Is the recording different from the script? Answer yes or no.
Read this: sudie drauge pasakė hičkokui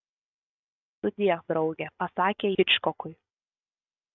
no